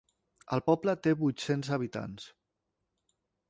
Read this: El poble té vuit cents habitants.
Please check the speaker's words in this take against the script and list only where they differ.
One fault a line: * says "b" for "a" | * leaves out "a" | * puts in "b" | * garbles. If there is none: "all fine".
all fine